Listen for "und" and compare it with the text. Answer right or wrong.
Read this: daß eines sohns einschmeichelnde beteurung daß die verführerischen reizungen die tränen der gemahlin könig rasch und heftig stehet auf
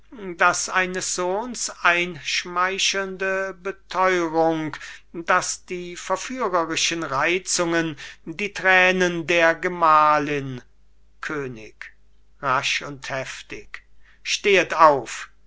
right